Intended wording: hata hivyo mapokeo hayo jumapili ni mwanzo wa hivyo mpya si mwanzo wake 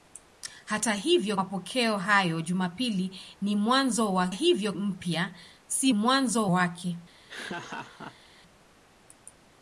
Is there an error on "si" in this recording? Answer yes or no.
no